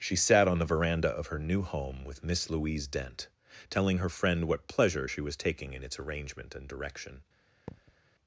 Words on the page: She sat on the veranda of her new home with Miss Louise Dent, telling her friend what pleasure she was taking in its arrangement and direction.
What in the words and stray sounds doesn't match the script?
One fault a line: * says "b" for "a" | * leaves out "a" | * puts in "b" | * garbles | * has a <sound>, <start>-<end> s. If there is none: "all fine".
* has a thud, 7.7-8.0 s